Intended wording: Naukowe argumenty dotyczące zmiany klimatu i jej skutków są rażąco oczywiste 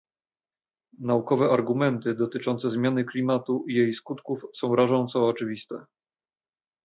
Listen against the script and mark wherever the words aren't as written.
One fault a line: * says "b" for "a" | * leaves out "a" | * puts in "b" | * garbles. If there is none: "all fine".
all fine